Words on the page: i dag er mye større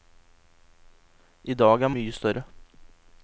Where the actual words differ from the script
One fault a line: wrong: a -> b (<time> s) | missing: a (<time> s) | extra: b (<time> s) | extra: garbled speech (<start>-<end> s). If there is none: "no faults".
no faults